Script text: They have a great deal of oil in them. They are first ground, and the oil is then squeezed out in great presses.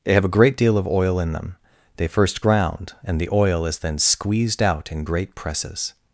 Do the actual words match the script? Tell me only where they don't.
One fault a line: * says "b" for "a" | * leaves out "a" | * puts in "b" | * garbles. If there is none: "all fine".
* leaves out "are"